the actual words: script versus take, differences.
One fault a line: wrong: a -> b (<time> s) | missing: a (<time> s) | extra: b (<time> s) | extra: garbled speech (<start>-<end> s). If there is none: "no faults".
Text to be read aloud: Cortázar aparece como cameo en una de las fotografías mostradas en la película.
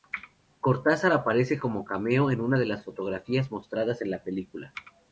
no faults